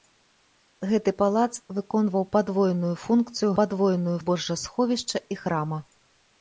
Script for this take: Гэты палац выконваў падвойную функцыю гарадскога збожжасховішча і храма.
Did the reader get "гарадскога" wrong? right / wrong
wrong